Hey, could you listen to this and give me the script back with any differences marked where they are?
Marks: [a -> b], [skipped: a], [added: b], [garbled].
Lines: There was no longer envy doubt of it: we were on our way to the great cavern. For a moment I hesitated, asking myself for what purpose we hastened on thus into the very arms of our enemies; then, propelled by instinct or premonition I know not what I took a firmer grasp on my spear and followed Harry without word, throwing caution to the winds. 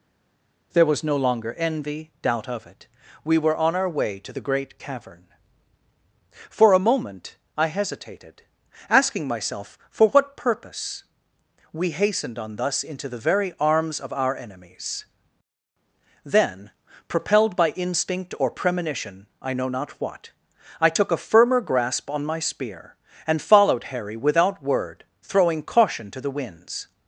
There was no longer envy doubt of it: we were on our way to the great cavern. For a moment I hesitated, asking myself for what purpose we hastened on thus into the very arms of our enemies; then, propelled by instinct or premonition I know not what I took a firmer grasp on my spear and followed Harry without word, throwing caution to the winds.